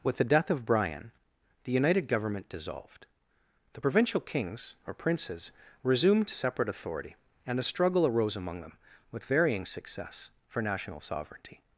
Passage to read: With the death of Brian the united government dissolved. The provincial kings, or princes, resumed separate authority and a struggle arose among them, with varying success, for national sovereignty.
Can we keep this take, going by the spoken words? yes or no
yes